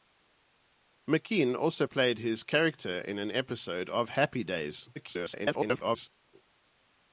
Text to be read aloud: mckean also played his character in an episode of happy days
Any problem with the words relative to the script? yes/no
yes